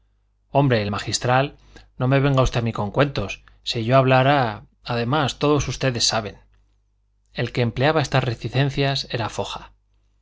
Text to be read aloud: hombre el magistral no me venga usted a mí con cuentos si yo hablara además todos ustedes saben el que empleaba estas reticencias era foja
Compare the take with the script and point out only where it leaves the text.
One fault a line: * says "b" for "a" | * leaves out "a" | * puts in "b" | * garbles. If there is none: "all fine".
all fine